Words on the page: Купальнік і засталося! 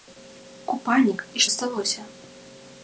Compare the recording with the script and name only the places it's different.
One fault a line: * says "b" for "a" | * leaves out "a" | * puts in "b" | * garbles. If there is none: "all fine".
all fine